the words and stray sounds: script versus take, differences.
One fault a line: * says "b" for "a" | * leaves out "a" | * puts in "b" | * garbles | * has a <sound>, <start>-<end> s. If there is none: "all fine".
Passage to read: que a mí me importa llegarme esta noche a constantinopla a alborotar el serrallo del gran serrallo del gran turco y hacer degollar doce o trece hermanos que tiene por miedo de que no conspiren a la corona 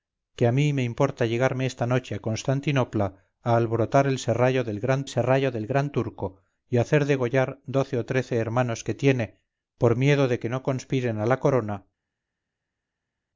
all fine